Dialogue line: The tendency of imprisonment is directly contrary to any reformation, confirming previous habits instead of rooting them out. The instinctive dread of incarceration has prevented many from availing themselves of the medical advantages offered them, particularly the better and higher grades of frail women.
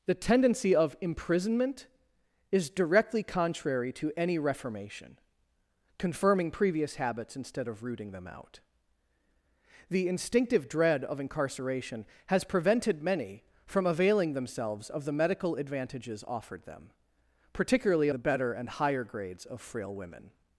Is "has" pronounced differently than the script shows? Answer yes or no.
no